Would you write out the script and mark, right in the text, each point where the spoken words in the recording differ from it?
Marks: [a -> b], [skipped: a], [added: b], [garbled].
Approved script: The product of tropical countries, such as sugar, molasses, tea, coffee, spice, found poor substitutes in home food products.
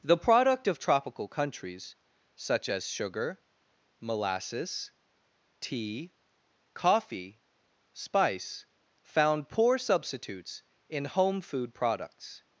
The product of tropical countries, such as sugar, molasses, tea, coffee, spice, found poor substitutes in home food products.